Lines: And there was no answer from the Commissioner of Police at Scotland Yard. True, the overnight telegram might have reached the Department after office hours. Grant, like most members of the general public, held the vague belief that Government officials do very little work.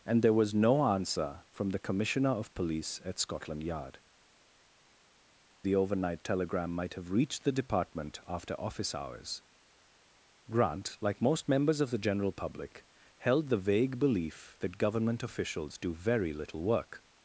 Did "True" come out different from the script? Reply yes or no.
yes